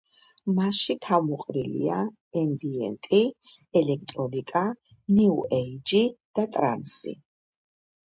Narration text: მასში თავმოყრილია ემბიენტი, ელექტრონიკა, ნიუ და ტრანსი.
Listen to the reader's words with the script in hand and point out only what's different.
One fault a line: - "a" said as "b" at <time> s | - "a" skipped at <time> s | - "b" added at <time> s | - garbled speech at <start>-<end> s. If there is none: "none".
- "ეიჯი" added at 5.6 s